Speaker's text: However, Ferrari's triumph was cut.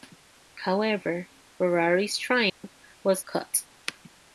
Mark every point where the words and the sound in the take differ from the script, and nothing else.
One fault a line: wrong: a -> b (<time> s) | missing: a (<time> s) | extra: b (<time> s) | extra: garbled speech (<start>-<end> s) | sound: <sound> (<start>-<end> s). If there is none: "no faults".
sound: dropout (2.5-2.6 s)